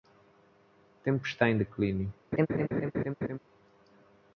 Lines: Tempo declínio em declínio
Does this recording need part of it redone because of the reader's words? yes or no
yes